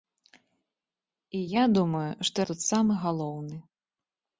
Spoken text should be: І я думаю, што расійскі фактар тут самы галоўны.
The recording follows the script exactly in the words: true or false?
false